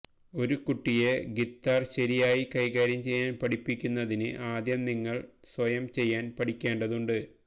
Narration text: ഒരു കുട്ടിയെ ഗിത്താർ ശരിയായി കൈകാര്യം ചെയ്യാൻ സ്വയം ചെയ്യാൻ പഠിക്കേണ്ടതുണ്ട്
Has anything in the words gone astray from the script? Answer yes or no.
yes